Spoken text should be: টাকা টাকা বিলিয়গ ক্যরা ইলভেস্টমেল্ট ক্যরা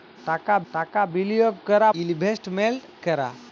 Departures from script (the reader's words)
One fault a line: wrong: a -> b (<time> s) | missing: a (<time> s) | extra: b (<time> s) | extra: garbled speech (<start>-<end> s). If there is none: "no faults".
no faults